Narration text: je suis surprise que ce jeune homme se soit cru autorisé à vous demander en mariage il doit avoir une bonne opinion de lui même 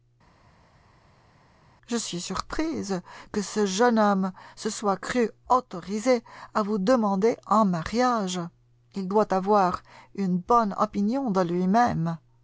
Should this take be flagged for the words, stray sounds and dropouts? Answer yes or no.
no